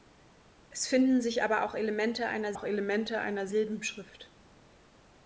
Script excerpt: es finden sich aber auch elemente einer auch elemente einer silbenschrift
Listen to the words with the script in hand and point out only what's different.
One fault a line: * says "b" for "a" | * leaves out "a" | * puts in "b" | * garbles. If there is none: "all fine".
all fine